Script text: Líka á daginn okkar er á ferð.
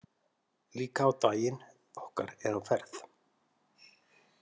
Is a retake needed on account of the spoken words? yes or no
no